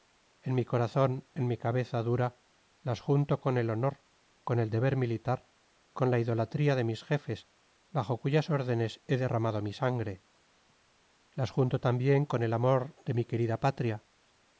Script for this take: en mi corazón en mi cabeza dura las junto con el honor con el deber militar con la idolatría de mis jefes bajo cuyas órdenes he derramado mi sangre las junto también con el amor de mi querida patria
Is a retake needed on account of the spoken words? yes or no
no